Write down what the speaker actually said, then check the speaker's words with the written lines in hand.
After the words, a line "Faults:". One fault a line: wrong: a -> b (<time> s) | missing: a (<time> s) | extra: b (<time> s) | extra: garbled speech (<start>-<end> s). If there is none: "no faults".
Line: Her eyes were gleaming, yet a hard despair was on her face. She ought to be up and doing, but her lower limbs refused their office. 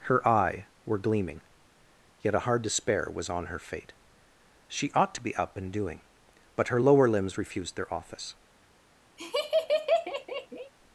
Her eye were gleaming, yet a hard despair was on her fate. She ought to be up and doing, but her lower limbs refused their office.
Faults:
wrong: eyes -> eye (0.3 s)
wrong: face -> fate (3.6 s)